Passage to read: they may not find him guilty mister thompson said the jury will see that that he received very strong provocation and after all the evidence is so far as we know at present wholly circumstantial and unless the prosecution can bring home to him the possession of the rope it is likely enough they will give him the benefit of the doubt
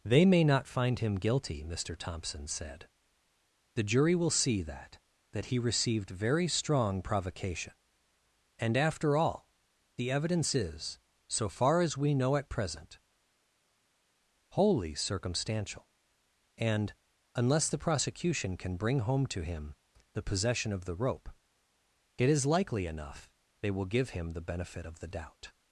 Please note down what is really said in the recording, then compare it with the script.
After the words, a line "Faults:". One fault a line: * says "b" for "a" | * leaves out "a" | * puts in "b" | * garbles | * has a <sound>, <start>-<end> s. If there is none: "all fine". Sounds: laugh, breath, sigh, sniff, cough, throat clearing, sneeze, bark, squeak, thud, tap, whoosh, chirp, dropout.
they may not find him guilty mister thompson said the jury will see that that he received very strong provocation and after all the evidence is so far as we know at present wholly circumstantial and unless the prosecution can bring home to him the possession of the rope it is likely enough they will give him the benefit of the doubt
Faults:
all fine